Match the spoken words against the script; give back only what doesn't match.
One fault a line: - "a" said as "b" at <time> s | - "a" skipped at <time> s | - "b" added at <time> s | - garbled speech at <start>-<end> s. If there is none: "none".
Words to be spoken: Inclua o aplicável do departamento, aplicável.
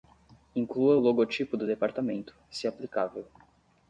- "aplicável" said as "logotipo" at 1.0 s
- "se" added at 2.5 s